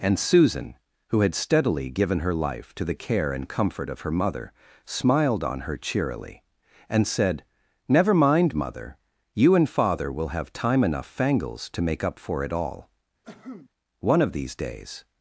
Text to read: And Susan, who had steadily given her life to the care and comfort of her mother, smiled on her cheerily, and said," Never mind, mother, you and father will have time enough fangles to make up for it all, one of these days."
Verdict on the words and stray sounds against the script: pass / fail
fail